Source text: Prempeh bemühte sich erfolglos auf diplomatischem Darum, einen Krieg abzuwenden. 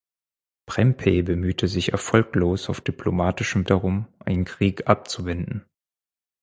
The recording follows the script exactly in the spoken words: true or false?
true